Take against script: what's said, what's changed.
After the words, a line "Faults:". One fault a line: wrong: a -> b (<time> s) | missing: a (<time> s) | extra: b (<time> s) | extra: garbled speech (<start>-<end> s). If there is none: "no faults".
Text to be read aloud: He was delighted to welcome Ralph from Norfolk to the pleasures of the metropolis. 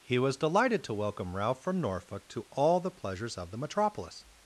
He was delighted to welcome Ralph from Norfolk to all the pleasures of the metropolis.
Faults:
extra: all (2.5 s)